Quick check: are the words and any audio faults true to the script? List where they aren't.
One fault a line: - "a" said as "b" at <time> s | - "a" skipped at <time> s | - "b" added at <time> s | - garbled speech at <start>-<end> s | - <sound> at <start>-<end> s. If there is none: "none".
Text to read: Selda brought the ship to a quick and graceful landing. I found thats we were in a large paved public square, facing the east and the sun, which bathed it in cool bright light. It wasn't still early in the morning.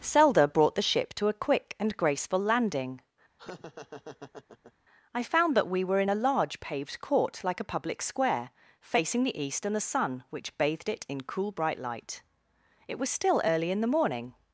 - laugh at 3.4-4.7 s
- "thats" said as "that" at 5.5 s
- "court like a" added at 7.0 s
- "wasn't" said as "was" at 13.0 s